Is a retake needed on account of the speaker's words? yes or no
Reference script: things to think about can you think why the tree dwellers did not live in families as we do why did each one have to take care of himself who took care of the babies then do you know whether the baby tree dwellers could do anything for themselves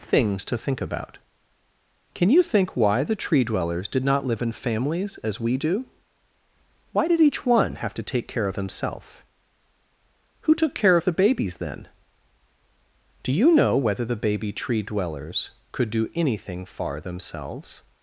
yes